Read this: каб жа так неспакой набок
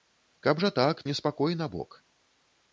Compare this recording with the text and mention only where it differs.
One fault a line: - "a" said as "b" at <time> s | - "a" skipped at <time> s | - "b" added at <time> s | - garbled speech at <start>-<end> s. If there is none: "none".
none